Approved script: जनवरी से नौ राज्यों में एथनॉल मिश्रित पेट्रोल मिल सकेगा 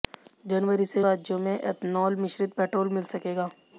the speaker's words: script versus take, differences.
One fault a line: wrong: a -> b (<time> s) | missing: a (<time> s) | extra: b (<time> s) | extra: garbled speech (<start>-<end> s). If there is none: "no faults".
missing: नौ (1.0 s)